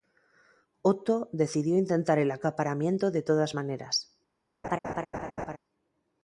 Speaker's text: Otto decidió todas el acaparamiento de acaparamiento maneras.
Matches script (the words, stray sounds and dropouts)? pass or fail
fail